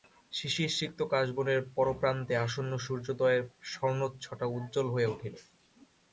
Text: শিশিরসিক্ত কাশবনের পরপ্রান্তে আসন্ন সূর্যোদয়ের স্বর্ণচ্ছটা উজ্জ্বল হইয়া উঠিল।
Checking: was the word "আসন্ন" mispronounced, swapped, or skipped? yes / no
no